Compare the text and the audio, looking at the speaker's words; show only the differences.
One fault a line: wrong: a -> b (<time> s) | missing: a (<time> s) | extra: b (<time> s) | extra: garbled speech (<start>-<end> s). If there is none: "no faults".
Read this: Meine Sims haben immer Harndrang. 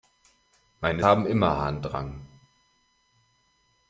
missing: Sims (1.1 s)